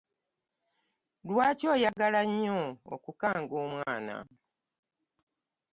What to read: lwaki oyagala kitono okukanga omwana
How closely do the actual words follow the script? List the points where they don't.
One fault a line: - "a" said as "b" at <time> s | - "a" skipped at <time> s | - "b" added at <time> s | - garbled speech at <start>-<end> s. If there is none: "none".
- "kitono" said as "nnyo" at 2.3 s